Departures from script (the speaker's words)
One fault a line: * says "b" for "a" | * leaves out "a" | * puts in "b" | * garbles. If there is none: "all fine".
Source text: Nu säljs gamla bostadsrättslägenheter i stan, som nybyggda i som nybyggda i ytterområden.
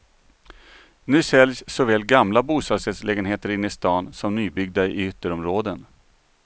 * puts in "såväl"
* puts in "inne"
* leaves out "som nybyggda i"